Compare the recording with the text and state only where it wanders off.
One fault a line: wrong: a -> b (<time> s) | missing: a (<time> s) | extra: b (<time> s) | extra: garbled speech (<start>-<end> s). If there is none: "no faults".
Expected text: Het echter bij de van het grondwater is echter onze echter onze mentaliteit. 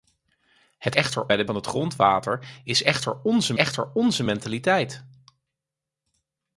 no faults